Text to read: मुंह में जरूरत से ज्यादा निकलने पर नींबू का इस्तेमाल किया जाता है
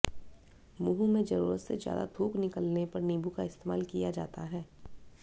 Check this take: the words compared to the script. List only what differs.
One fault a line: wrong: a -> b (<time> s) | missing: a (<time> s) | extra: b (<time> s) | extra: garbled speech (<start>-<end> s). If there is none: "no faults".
extra: थूक (2.2 s)